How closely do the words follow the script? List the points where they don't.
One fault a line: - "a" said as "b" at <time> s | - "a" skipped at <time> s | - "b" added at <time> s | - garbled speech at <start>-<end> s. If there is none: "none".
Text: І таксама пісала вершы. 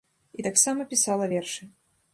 none